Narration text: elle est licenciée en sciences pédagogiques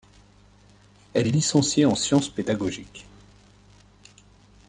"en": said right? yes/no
yes